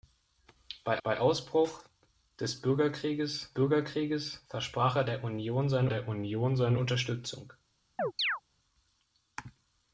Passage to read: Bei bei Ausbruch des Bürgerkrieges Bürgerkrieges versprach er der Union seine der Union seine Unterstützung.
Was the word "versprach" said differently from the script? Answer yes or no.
no